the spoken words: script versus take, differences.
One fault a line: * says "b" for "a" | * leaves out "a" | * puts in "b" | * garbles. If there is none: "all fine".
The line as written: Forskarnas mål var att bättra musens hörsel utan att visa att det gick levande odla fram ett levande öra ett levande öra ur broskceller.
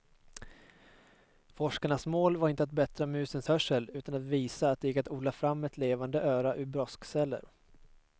* puts in "inte"
* says "att" for "levande"
* leaves out "ett levande öra"